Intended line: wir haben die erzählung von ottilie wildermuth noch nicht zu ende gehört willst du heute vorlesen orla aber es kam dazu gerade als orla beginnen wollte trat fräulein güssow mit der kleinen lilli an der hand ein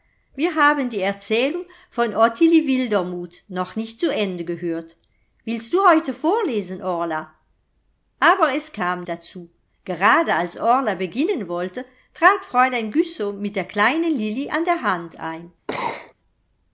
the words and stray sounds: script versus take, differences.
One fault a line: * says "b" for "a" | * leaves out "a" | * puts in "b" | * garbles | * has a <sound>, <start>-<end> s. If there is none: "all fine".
* has a sneeze, 15.7-16.1 s